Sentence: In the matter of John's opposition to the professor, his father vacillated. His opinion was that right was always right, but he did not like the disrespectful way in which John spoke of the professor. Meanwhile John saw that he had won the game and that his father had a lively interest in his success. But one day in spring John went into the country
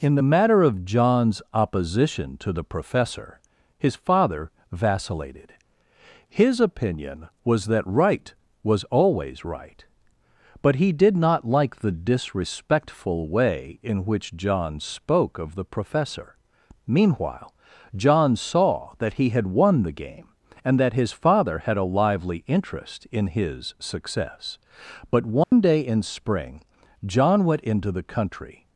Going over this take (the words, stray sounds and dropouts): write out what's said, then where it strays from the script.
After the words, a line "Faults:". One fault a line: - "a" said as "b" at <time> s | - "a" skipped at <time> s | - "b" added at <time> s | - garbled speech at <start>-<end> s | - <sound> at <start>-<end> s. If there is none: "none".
In the matter of John's opposition to the professor, his father vacillated. His opinion was that right was always right, but he did not like the disrespectful way in which John spoke of the professor. Meanwhile John saw that he had won the game and that his father had a lively interest in his success. But one day in spring John went into the country
Faults:
- dropout at 25.4-25.5 s